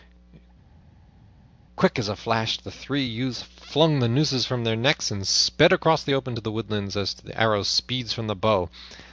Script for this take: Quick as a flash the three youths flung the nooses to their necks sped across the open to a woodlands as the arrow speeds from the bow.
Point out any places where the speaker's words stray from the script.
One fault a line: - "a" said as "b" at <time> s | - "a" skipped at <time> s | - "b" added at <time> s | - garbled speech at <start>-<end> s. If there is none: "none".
- "to" said as "from" at 4.5 s
- "and" added at 5.1 s
- "a" said as "the" at 6.4 s